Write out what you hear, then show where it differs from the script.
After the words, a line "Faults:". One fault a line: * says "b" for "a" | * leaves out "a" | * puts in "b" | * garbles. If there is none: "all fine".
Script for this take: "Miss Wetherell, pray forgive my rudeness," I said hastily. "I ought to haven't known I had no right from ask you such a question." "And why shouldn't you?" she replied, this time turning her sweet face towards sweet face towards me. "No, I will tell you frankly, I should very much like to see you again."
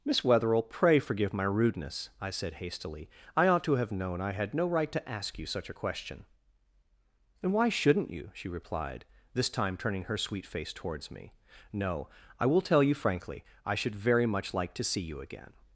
"Miss Wetherell, pray forgive my rudeness," I said hastily. "I ought to have known I had no right to ask you such a question." "And why shouldn't you?" she replied, this time turning her sweet face towards me. "No, I will tell you frankly, I should very much like to see you again."
Faults:
* says "have" for "haven't"
* says "to" for "from"
* leaves out "sweet face towards"